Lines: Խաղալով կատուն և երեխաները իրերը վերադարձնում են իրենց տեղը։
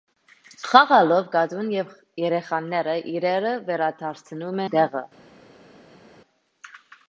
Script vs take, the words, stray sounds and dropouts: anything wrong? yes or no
yes